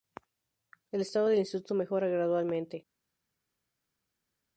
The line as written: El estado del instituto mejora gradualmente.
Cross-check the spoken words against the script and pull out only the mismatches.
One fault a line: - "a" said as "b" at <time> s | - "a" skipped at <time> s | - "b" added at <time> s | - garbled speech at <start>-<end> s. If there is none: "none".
none